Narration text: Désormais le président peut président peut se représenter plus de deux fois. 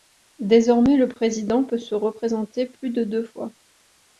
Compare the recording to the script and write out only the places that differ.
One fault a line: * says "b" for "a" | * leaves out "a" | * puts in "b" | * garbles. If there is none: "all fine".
* leaves out "président peut"